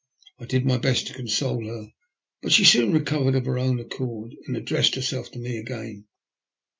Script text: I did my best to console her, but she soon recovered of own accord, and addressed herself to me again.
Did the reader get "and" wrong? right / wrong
right